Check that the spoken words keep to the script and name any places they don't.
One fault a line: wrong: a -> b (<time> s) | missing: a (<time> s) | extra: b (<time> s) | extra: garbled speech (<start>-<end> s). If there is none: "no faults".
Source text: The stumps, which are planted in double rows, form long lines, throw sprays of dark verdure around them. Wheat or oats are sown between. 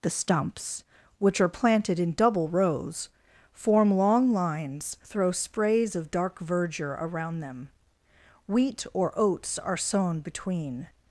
no faults